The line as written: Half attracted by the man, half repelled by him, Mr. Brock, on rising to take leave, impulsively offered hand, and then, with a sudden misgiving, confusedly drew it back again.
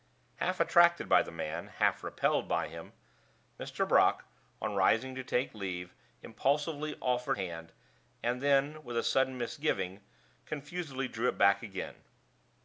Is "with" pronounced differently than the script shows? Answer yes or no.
no